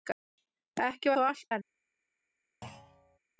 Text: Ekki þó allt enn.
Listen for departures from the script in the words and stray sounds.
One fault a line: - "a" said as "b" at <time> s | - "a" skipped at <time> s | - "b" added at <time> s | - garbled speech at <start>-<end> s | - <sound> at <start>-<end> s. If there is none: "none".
- thud at 2.6-3.2 s